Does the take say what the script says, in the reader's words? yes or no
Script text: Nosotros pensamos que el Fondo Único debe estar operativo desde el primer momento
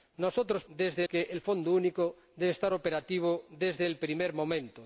no